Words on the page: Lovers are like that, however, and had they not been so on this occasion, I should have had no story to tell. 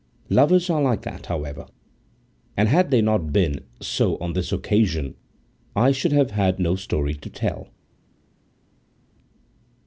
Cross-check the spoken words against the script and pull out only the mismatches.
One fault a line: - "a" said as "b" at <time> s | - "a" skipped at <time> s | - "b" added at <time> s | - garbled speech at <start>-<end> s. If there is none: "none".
none